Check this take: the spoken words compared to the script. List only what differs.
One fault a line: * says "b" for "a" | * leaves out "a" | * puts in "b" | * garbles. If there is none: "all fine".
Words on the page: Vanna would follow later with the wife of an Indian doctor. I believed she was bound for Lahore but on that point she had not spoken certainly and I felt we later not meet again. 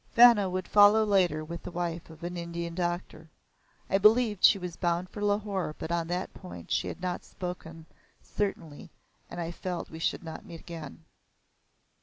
* says "should" for "later"